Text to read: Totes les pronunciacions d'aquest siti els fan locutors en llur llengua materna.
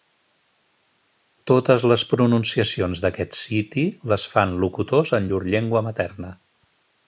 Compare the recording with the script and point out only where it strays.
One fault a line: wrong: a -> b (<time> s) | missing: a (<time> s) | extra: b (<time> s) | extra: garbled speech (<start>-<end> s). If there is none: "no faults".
wrong: els -> les (4.2 s)